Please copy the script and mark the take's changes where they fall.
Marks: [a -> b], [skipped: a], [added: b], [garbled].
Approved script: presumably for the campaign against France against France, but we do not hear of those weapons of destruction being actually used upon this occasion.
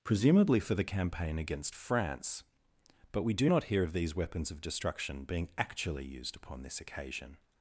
presumably for the campaign against France [skipped: against France,] but we do not hear of [those -> these] weapons of destruction being actually used upon this occasion.